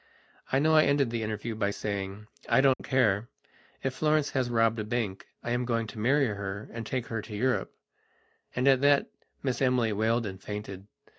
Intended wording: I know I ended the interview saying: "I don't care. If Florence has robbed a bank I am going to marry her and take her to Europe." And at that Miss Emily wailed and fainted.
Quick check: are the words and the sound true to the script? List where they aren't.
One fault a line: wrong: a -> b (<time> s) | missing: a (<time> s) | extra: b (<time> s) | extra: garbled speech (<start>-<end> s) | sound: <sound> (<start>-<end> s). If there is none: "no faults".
extra: by (1.5 s)
sound: dropout (2.7-2.8 s)